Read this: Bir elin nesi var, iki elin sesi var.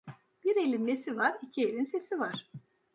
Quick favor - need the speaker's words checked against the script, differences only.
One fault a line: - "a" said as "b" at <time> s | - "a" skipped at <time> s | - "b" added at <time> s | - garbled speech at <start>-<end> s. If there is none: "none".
none